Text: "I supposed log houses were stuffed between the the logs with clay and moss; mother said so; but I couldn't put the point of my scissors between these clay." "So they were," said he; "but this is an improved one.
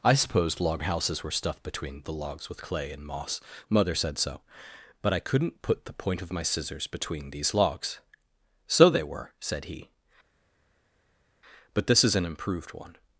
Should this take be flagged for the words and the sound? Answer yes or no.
yes